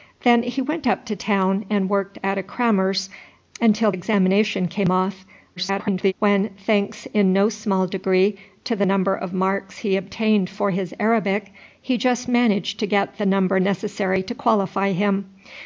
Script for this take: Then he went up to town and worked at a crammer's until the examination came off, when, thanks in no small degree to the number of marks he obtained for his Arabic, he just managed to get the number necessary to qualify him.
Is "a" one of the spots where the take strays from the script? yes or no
no